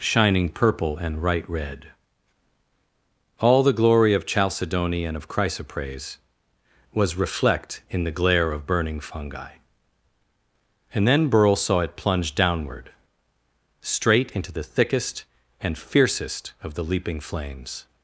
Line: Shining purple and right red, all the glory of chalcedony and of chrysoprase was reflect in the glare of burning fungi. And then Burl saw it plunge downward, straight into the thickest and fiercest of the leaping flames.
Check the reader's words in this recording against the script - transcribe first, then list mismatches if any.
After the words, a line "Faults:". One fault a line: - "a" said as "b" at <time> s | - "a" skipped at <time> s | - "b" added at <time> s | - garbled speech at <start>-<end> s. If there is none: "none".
Shining purple and right red, all the glory of chalcedony and of chrysoprase was reflect in the glare of burning fungi. And then Burl saw it plunge downward, straight into the thickest and fiercest of the leaping flames.
Faults:
none